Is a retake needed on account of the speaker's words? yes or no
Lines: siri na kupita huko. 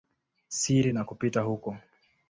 no